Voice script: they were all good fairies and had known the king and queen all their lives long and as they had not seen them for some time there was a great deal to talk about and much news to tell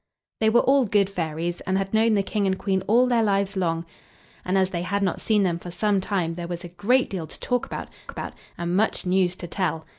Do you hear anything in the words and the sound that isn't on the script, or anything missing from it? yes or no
yes